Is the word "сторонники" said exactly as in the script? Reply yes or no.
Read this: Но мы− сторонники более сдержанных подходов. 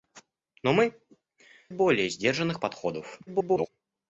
no